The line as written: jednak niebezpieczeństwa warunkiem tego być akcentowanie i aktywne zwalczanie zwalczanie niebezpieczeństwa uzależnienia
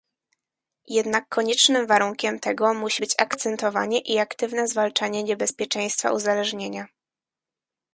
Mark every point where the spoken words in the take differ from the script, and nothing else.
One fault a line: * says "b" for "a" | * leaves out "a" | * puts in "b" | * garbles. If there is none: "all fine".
* says "koniecznym" for "niebezpieczeństwa"
* puts in "musi"
* leaves out "zwalczanie"